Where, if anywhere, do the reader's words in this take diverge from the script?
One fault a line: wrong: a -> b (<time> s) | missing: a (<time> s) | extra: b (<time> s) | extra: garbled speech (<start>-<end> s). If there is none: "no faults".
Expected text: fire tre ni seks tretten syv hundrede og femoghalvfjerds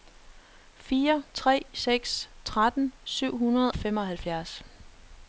missing: ni (1.6 s)
missing: og (3.7 s)